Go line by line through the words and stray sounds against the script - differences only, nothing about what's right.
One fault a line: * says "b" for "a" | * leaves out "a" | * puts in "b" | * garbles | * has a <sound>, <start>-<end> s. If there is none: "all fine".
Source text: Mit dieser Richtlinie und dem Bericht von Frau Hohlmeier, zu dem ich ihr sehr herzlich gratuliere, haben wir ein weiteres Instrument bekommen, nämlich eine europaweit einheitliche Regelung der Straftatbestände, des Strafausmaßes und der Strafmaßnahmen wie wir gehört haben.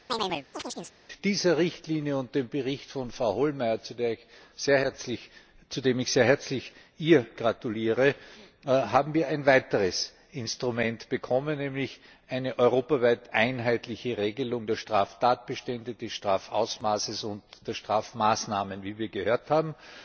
* has a chirp, 0.1-1.0 s